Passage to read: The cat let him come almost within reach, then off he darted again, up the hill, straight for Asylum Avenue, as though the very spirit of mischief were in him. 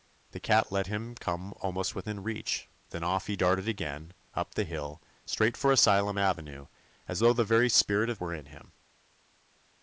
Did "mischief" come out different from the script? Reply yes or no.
yes